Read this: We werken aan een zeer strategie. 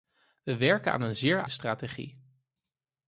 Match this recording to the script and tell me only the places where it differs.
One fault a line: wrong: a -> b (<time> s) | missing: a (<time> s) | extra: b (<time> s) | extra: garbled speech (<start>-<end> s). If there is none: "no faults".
no faults